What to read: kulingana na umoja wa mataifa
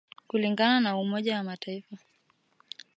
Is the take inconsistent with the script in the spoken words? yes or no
no